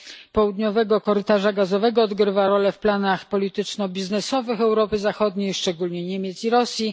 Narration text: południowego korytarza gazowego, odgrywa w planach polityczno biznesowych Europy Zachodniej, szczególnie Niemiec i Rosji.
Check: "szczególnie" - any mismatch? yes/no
no